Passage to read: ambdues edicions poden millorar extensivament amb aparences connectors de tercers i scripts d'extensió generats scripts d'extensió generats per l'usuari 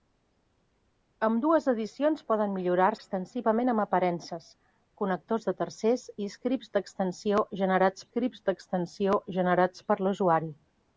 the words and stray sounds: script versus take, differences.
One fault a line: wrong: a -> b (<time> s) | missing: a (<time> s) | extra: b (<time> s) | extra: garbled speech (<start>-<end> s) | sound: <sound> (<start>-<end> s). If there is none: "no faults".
no faults